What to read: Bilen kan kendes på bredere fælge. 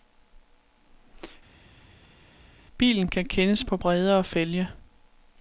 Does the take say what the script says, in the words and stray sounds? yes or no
yes